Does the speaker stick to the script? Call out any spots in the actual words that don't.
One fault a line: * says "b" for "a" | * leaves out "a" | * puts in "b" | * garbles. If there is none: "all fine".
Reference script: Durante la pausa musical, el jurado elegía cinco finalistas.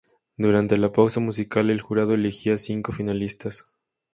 all fine